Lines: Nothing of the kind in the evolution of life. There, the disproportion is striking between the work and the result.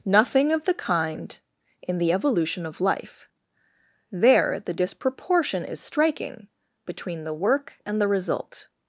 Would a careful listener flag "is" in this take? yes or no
no